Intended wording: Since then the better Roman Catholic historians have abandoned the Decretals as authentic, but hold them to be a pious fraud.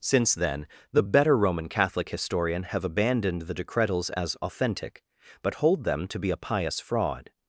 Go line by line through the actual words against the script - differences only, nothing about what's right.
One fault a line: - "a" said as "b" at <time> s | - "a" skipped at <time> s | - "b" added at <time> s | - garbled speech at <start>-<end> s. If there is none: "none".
- "historians" said as "historian" at 2.1 s